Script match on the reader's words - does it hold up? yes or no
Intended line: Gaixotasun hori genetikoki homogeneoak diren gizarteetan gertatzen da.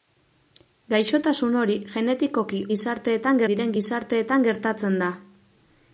no